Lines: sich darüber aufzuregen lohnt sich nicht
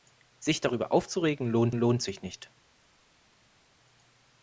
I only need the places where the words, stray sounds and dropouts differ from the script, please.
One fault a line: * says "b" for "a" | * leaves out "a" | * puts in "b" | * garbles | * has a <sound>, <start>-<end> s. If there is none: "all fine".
* puts in "lohnt"